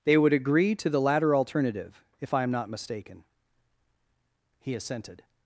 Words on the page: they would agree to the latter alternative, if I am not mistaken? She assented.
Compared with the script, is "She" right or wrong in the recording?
wrong